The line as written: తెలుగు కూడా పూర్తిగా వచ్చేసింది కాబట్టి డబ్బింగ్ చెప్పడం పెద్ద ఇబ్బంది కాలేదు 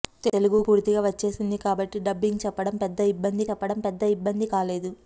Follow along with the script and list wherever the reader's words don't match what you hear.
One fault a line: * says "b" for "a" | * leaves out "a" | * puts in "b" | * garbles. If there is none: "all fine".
* leaves out "కూడా"
* puts in "చెప్పడం పెద్ద ఇబ్బంది"